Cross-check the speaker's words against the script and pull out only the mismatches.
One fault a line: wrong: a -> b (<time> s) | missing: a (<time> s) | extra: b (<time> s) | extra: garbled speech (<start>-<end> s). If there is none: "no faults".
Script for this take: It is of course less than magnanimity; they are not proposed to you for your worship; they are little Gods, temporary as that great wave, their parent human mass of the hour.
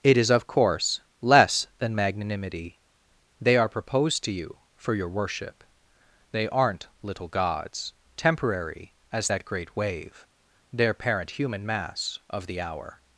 missing: not (3.7 s)
wrong: are -> aren't (6.5 s)